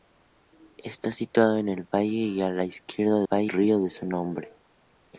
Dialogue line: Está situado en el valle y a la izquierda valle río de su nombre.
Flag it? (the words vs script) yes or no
no